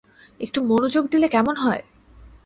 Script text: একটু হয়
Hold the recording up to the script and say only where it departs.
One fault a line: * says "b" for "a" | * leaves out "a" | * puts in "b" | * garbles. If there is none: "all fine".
* puts in "মনোযোগ দিলে কেমন"